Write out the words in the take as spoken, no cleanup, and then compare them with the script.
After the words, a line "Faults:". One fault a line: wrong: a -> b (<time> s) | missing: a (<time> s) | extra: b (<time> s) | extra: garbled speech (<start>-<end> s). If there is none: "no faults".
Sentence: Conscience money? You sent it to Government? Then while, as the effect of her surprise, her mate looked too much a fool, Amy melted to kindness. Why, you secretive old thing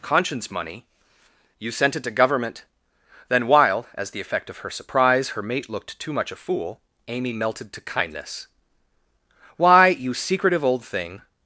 Conscience money? You sent it to Government? Then while, as the effect of her surprise, her mate looked too much a fool, Amy melted to kindness. Why, you secretive old thing
Faults:
no faults